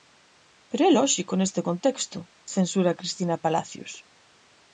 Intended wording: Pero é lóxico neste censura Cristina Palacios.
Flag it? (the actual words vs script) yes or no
yes